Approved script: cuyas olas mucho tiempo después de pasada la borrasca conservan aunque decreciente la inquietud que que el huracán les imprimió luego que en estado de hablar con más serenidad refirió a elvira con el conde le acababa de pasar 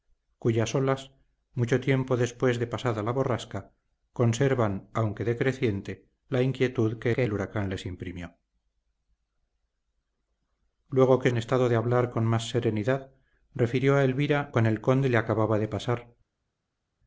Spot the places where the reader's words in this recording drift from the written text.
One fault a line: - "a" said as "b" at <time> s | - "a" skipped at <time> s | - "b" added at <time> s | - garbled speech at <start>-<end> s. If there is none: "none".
none